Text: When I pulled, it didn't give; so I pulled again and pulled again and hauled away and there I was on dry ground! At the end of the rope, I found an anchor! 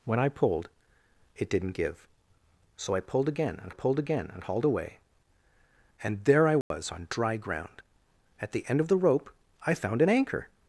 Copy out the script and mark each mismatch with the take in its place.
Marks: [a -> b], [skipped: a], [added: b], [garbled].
When I pulled, it didn't give; so I pulled again and pulled again and hauled away and there I was on dry ground! At the end of the rope, I found an anchor!